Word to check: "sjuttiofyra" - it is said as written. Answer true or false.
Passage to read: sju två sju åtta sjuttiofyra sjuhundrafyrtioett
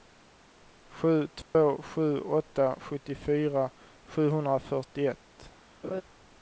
true